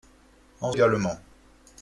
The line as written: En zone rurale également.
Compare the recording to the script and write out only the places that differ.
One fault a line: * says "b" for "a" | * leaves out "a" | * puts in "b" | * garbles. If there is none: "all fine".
* leaves out "zone rurale"